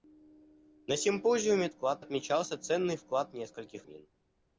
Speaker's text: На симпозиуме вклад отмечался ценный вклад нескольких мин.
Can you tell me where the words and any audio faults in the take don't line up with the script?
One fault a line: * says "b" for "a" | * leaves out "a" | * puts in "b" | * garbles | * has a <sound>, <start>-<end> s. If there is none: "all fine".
all fine